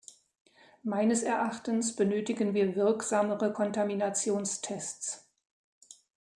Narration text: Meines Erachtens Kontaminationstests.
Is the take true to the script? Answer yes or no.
no